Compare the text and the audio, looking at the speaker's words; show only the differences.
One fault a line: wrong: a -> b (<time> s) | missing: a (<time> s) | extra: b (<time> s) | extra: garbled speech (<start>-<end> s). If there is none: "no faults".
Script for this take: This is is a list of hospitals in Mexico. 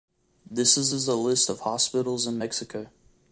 no faults